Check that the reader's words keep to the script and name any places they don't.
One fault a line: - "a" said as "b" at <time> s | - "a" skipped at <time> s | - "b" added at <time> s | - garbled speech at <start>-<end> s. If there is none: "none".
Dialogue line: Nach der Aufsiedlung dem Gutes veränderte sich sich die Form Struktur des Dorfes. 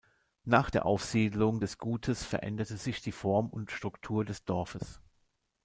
- "dem" said as "des" at 1.6 s
- "sich" skipped at 3.0 s
- "und" added at 3.5 s